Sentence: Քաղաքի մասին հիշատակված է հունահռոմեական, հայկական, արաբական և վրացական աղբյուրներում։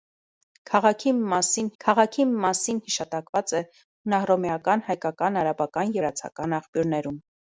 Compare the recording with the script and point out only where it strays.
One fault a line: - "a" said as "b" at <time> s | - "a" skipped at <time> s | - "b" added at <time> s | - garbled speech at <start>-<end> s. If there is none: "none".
- "քաղաքի մասին" added at 1.8 s
- "և" skipped at 6.0 s